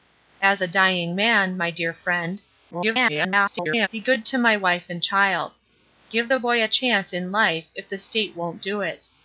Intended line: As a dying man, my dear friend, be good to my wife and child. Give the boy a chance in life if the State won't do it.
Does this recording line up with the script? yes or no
no